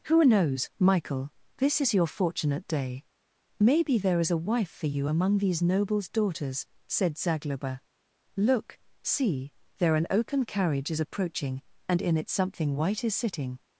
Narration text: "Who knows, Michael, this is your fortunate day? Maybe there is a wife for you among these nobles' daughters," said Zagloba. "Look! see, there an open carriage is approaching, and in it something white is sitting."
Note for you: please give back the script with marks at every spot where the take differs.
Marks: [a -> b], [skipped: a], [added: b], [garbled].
"Who knows, Michael, this is your fortunate day? Maybe there is a wife for you among these nobles' daughters," said Zagloba. "Look! see, there an [open -> oaken] carriage is approaching, and in it something white is sitting."